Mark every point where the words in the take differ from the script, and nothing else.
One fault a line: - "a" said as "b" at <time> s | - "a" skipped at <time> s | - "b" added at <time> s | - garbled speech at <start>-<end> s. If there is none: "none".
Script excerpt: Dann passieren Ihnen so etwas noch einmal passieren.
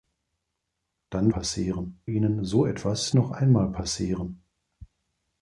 none